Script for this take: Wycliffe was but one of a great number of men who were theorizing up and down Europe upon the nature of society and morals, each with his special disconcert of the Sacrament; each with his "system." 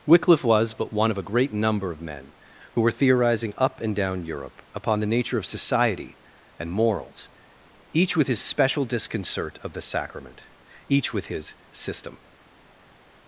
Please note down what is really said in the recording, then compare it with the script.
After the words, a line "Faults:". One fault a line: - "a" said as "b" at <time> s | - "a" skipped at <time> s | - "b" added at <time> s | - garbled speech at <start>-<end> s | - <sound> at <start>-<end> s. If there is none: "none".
Wycliffe was but one of a great number of men who were theorizing up and down Europe upon the nature of society and morals, each with his special disconcert of the Sacrament; each with his "system."
Faults:
none